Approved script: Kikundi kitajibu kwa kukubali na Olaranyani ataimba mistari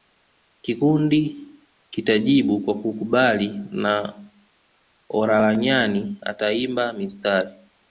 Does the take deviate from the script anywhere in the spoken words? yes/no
no